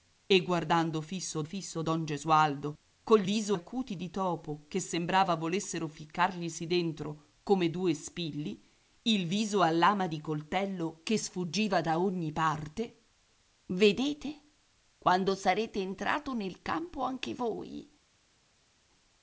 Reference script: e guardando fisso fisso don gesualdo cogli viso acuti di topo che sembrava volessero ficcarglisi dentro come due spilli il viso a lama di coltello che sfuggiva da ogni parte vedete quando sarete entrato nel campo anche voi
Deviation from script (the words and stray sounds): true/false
false